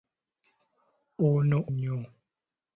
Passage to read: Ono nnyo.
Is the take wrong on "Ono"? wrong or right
right